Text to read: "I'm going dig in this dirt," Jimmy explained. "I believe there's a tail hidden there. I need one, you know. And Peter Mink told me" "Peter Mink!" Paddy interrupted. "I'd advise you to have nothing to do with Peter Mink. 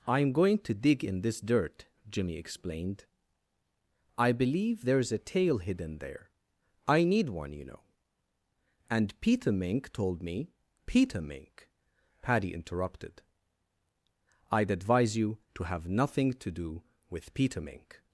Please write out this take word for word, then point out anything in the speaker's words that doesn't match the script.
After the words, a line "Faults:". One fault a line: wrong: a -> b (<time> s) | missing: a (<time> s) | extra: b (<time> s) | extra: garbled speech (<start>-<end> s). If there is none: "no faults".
"I'm going to dig in this dirt," Jimmy explained. "I believe there's a tail hidden there. I need one, you know. And Peter Mink told me" "Peter Mink!" Paddy interrupted. "I'd advise you to have nothing to do with Peter Mink.
Faults:
extra: to (0.6 s)